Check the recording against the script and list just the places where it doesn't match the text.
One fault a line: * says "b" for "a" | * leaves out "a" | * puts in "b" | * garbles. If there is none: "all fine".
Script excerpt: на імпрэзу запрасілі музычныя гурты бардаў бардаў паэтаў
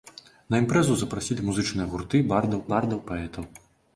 all fine